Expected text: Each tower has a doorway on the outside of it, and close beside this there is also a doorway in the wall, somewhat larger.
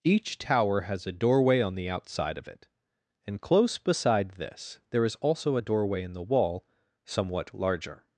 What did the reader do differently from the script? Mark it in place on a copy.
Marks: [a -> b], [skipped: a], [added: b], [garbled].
Each tower has a doorway on the outside of it, and close beside this there is also a doorway in the wall, somewhat larger.